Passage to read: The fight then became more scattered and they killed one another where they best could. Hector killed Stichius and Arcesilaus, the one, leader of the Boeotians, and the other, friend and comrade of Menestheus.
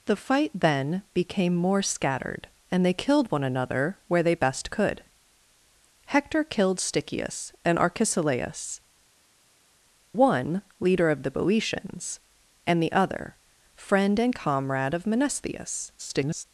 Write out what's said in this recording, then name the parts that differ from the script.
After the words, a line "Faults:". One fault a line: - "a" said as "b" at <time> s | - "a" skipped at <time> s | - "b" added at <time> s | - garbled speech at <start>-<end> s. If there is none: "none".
The fight then became more scattered and they killed one another where they best could. Hector killed Stichius and Arcesilaus, one, leader of the Boeotians, and the other, friend and comrade of Menestheus. [garbled]
Faults:
- "the" skipped at 8.8 s
- garbled speech at 16.0-16.4 s